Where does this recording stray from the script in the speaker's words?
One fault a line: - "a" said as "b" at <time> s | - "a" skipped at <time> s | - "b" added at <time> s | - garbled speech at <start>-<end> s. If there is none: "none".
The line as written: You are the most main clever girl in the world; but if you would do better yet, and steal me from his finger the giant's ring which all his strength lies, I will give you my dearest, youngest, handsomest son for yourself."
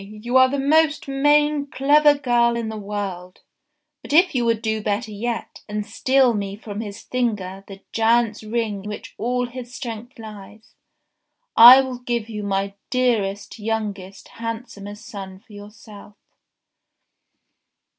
none